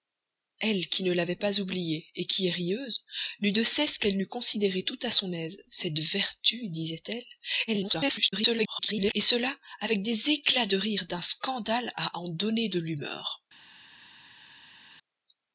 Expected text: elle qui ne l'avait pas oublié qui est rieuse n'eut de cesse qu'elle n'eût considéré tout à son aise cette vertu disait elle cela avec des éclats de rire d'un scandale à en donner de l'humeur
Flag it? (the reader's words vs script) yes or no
yes